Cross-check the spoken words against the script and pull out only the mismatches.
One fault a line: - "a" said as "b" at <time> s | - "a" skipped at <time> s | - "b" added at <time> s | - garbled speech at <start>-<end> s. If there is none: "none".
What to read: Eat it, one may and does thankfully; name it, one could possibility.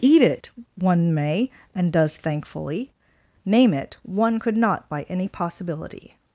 - "not by any" added at 4.6 s